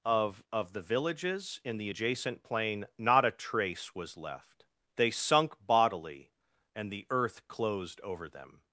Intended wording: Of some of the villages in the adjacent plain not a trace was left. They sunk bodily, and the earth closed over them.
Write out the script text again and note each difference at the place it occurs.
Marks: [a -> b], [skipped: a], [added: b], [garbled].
Of [skipped: some] of the villages in the adjacent plain not a trace was left. They sunk bodily, and the earth closed over them.